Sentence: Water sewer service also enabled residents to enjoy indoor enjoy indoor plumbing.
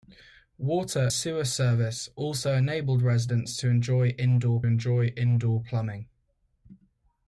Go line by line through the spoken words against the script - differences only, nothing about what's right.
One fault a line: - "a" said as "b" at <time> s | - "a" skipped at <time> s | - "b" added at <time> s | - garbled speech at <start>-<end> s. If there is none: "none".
none